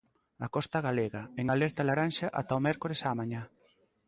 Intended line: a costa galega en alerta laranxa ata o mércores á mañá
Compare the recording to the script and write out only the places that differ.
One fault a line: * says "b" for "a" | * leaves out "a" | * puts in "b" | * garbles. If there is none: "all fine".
all fine